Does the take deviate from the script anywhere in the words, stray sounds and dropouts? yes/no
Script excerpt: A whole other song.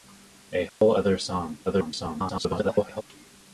yes